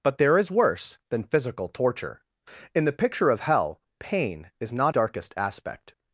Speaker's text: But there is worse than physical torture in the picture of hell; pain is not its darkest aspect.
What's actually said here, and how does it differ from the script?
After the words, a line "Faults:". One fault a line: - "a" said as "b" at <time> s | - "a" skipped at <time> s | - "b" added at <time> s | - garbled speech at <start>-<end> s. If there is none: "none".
But there is worse than physical torture in the picture of hell; pain is not darkest aspect.
Faults:
- "its" skipped at 5.0 s